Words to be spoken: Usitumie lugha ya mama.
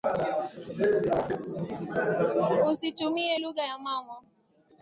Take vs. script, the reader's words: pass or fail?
pass